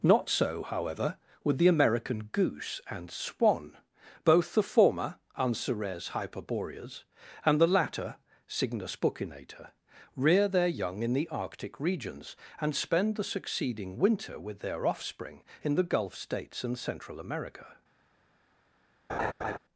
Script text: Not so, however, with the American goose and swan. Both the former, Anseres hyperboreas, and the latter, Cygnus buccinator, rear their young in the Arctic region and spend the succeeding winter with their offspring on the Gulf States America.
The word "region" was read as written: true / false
false